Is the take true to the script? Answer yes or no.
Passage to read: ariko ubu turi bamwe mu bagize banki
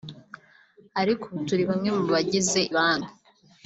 yes